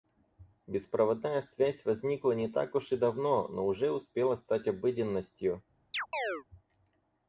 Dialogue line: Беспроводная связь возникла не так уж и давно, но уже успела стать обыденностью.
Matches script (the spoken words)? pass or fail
pass